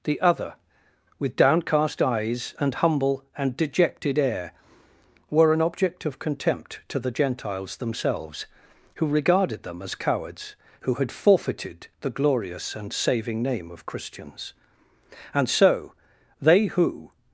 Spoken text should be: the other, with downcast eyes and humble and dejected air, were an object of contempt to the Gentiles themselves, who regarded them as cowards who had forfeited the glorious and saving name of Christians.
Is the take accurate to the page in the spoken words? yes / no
no